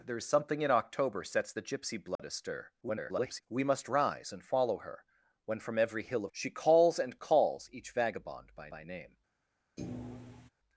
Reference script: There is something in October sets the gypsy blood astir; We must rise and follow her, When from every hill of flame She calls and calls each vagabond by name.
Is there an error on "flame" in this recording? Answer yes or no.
yes